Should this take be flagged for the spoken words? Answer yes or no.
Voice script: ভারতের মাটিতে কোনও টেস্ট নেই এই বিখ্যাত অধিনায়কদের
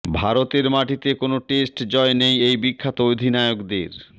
yes